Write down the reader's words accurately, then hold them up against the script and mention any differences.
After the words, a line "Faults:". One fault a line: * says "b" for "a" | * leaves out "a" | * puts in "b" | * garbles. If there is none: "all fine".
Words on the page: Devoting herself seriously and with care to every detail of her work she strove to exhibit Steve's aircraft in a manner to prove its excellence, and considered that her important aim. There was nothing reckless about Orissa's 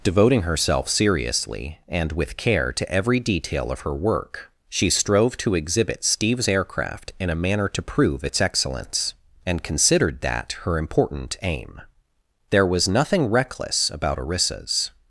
Devoting herself seriously and with care to every detail of her work she strove to exhibit Steve's aircraft in a manner to prove its excellence, and considered that her important aim. There was nothing reckless about Orissa's
Faults:
all fine